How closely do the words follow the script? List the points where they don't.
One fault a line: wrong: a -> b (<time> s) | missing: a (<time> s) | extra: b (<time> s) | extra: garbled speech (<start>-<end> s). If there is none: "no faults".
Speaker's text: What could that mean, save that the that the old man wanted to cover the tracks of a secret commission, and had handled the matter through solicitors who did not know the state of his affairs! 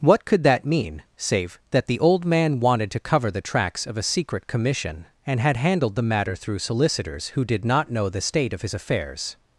missing: that the (2.0 s)